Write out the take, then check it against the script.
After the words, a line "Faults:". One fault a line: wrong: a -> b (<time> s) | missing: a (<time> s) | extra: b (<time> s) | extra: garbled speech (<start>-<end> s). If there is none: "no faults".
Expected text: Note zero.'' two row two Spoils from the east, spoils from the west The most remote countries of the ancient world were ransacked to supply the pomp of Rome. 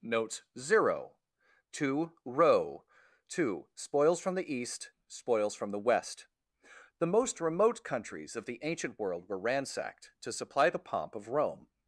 Note zero.'' two row two Spoils from the east, spoils from the west The most remote countries of the ancient world were ransacked to supply the pomp of Rome.
Faults:
no faults